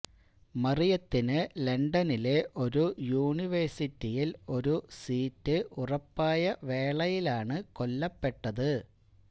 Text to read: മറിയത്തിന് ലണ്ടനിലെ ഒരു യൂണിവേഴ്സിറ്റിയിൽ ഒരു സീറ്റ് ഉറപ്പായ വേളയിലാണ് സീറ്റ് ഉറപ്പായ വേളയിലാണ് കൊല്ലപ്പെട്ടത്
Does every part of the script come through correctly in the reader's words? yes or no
no